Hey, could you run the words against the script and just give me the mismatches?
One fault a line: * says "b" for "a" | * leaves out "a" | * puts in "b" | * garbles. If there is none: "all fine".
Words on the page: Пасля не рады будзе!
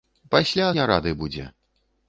all fine